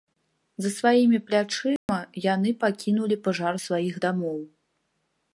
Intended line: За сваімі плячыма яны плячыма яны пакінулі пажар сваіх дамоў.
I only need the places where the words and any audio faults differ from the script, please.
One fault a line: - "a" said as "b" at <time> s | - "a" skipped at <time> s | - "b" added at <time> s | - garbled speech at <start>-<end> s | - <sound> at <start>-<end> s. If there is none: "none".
- dropout at 1.8-1.9 s
- "плячыма яны" skipped at 2.5 s